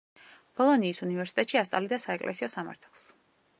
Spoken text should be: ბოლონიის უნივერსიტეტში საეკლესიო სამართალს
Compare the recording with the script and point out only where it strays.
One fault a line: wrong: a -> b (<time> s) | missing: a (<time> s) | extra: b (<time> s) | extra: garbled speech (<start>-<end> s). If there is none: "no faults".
extra: ასწავლიდა (1.6 s)